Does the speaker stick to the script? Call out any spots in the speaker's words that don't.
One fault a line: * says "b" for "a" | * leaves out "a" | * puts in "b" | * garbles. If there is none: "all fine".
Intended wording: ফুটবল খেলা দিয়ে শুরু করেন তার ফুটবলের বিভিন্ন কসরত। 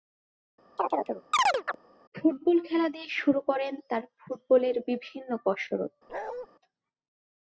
all fine